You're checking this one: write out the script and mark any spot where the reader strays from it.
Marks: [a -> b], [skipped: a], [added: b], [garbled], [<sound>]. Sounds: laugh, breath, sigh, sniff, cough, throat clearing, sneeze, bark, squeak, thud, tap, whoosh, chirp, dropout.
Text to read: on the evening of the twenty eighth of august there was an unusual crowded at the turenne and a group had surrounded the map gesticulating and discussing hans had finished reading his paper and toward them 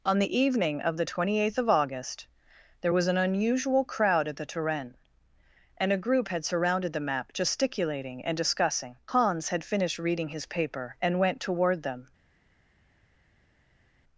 on the evening of the twenty eighth of august there was an unusual [crowded -> crowd] at the turenne and a group had surrounded the map gesticulating and discussing hans had finished reading his paper and [added: went] toward them